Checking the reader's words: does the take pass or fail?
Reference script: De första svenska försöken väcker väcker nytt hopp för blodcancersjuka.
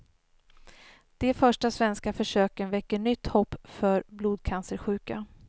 fail